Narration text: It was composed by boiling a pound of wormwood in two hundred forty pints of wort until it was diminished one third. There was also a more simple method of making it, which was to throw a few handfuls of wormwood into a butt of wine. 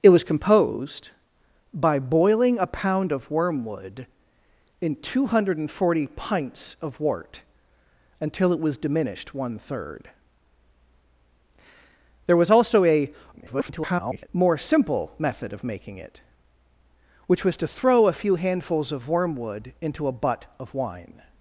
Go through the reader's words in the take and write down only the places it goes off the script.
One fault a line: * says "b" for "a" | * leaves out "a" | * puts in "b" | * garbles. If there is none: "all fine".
* garbles